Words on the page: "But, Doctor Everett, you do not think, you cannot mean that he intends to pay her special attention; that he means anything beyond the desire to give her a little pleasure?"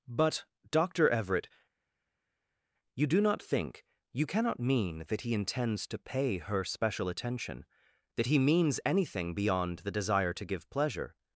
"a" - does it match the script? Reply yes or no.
no